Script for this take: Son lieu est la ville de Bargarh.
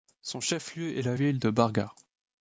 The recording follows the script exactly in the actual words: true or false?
false